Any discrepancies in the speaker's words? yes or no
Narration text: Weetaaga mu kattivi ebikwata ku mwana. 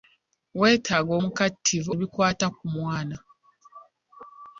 no